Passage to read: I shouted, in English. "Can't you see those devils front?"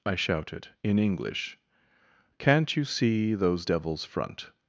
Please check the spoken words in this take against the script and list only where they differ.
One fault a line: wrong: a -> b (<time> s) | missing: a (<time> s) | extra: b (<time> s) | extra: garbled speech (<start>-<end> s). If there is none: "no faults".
no faults